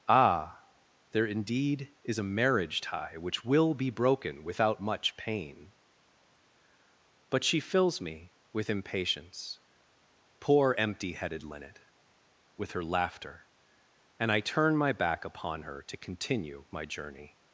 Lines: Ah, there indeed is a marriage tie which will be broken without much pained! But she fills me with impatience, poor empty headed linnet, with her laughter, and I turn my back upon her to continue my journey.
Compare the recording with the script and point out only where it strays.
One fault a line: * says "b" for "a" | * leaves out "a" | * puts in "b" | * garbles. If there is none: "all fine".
* says "pain" for "pained"